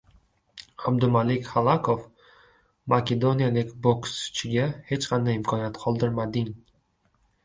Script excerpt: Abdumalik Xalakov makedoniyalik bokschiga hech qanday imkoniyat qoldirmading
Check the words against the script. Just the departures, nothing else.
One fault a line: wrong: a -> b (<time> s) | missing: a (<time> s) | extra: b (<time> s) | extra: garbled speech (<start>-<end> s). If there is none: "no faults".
no faults